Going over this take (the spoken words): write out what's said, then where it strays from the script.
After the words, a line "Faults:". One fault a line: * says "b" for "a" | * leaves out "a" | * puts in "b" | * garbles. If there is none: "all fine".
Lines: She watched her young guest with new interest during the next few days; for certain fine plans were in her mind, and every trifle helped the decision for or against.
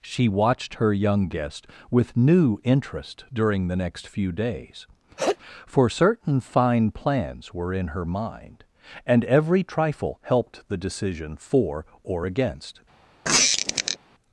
She watched her young guest with new interest during the next few days; for certain fine plans were in her mind, and every trifle helped the decision for or against.
Faults:
all fine